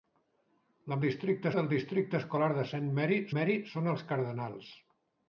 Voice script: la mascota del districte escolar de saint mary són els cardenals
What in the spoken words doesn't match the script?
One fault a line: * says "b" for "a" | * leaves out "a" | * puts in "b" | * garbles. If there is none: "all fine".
* says "districte" for "mascota"
* puts in "mary"